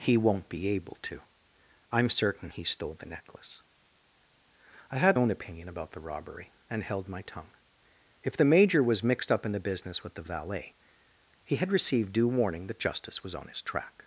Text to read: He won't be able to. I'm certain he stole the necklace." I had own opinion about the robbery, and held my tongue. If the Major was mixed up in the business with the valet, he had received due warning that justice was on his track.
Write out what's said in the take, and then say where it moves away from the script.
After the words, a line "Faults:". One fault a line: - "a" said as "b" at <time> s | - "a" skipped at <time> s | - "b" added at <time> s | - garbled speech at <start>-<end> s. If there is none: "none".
He won't be able to. I'm certain he stole the necklace." I had own opinion about the robbery, and held my tongue. If the Major was mixed up in the business with the valet, he had received due warning that justice was on his track.
Faults:
none